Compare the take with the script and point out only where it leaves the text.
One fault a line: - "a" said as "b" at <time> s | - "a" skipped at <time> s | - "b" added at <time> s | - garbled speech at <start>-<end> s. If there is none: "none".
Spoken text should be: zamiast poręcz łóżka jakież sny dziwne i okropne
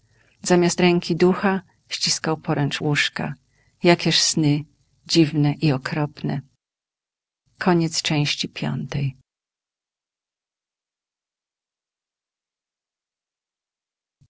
- "ręki ducha ściskał" added at 0.8 s